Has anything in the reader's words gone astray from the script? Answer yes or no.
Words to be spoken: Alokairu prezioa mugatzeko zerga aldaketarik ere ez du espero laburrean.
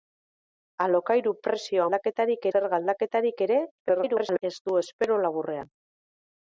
yes